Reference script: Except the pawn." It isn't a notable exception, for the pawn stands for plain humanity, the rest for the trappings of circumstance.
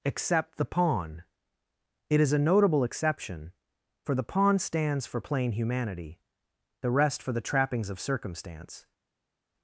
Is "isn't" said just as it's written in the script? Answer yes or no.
no